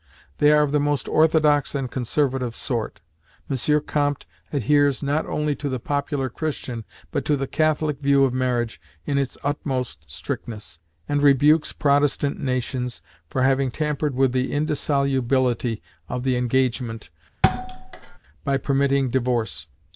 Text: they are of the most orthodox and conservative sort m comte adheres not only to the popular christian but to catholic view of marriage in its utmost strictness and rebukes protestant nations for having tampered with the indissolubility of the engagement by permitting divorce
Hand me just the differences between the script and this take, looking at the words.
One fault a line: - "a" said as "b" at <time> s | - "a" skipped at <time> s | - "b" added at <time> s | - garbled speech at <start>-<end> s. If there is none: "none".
- "the" added at 7.3 s